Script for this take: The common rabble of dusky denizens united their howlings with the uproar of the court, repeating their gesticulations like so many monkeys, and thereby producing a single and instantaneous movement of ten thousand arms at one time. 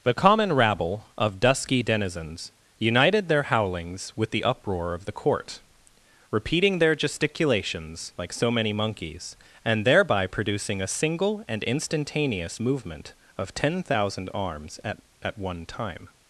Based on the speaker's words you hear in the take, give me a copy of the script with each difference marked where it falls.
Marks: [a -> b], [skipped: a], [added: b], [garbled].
The common rabble of dusky denizens united their howlings with the uproar of the court, repeating their gesticulations like so many monkeys, and thereby producing a single and instantaneous movement of ten thousand arms at [added: at] one time.